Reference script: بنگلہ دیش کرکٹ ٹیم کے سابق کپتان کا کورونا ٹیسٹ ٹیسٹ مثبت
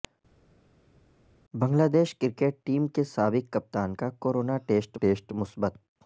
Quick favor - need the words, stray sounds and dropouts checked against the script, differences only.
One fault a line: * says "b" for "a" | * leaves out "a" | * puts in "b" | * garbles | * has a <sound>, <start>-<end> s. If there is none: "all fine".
all fine